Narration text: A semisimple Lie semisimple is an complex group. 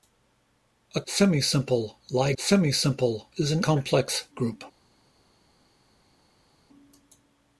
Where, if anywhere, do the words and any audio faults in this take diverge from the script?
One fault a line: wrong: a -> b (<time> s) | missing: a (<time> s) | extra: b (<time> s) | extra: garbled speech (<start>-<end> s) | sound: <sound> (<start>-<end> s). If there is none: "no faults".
no faults